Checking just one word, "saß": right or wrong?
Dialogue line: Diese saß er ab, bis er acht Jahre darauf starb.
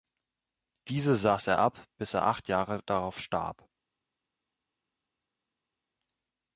right